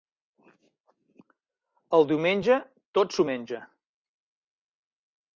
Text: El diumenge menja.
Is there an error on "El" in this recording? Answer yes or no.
no